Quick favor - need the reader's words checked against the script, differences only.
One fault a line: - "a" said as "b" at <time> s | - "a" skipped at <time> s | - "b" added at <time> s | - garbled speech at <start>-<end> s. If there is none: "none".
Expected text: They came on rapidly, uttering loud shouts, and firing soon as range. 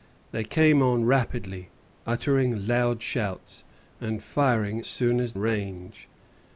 none